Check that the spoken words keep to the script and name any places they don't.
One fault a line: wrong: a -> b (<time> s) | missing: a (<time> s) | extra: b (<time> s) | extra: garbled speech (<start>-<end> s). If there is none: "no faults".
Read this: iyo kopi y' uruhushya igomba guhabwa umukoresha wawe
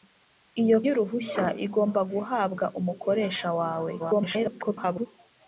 missing: kopi (0.8 s)
extra: garbled speech (4.0-5.1 s)